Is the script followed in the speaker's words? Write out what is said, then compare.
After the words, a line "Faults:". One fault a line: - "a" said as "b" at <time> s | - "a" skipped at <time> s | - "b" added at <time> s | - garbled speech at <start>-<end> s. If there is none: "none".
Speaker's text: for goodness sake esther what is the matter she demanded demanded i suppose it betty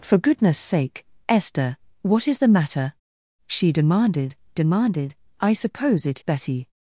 for goodness sake esther what is the matter she demanded demanded i suppose it betty
Faults:
none